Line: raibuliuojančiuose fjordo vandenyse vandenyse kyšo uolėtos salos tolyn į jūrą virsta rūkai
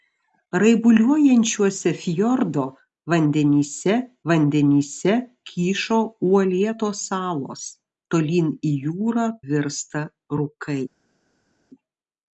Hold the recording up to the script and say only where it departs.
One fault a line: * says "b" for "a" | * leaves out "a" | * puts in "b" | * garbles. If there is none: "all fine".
all fine